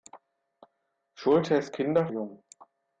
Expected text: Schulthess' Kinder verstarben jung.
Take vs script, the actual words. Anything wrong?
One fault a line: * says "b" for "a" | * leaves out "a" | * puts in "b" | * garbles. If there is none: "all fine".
* leaves out "verstarben"